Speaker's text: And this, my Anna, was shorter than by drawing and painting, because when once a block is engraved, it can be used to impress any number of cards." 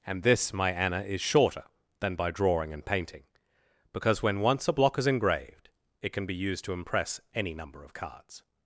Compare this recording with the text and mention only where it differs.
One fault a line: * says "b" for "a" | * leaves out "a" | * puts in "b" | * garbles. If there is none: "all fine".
* says "is" for "was"